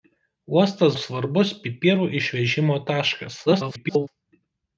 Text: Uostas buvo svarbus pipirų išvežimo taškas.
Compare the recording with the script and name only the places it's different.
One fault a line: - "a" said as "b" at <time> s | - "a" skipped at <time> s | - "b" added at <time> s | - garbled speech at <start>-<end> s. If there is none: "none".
- "buvo" skipped at 0.9 s
- garbled speech at 3.5-4.1 s